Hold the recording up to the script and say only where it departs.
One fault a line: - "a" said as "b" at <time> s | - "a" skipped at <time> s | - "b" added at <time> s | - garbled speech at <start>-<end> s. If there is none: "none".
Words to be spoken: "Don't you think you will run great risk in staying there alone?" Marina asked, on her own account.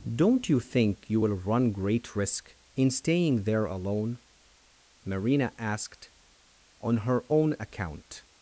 none